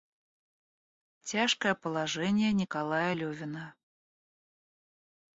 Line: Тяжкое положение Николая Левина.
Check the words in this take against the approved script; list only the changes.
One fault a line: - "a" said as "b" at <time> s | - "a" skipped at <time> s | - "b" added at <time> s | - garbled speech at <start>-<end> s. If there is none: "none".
none